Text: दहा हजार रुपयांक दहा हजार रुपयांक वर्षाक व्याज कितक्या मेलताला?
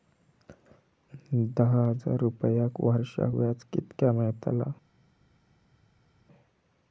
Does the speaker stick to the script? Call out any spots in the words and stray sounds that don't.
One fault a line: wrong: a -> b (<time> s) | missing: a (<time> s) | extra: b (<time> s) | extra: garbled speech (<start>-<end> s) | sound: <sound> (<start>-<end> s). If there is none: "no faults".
missing: दहा हजार रुपयांक (2.8 s)